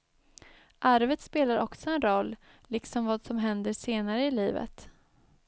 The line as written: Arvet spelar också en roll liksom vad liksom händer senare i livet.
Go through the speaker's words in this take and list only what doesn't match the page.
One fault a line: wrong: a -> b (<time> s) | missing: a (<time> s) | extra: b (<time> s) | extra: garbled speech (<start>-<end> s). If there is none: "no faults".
wrong: liksom -> som (3.3 s)